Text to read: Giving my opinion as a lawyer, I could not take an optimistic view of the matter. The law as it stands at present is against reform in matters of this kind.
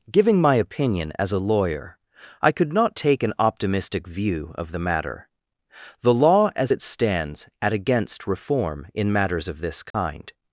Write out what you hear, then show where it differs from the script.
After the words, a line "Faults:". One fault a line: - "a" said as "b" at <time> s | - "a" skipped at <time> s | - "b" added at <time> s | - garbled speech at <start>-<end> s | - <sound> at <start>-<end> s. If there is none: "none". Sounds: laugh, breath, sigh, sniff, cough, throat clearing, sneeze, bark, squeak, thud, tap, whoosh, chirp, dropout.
Giving my opinion as a lawyer, I could not take an optimistic view of the matter. The law as it stands at against reform in matters of this kind.
Faults:
- "present is" skipped at 7.7 s
- dropout at 9.9-9.9 s